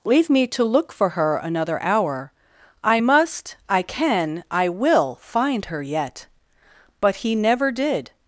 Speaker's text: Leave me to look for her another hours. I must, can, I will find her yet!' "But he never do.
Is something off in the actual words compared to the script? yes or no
yes